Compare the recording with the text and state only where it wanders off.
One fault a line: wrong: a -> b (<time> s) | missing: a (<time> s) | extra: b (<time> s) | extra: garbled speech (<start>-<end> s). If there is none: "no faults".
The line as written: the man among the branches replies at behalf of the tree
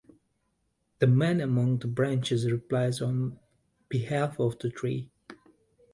wrong: at -> on (3.0 s)